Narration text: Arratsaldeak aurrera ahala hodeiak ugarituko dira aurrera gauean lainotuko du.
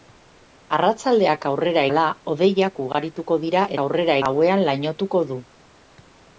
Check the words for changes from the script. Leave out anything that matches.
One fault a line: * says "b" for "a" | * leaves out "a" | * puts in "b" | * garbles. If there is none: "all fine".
all fine